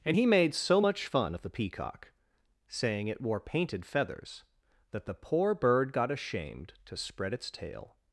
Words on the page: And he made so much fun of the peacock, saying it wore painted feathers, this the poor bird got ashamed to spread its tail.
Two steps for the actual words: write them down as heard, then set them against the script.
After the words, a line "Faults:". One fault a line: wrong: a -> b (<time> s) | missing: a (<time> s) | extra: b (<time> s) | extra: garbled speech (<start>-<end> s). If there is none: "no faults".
And he made so much fun of the peacock, saying it wore painted feathers, that the poor bird got ashamed to spread its tail.
Faults:
wrong: this -> that (4.9 s)